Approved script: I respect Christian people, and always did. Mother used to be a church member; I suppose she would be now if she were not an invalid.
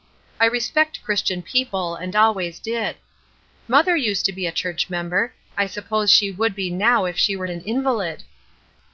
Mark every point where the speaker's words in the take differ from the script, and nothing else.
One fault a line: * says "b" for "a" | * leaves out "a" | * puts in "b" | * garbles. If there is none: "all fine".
* leaves out "not"